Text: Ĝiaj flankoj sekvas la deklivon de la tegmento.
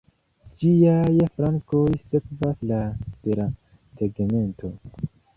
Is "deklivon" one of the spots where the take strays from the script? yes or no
yes